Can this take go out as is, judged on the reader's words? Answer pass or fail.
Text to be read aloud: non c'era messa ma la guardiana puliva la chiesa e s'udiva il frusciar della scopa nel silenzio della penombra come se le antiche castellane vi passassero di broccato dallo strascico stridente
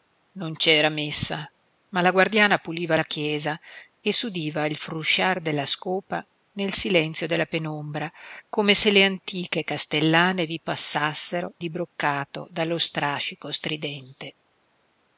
pass